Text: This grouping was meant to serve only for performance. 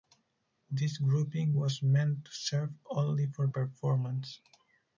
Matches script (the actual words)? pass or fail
pass